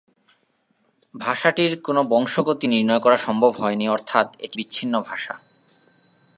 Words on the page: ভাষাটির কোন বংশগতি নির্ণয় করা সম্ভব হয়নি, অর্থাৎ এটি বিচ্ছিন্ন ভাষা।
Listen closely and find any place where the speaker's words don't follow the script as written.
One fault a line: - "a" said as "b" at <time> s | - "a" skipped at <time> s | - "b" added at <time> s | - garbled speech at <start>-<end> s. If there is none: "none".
none